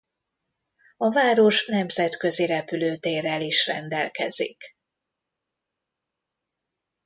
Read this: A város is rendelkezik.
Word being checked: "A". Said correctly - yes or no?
yes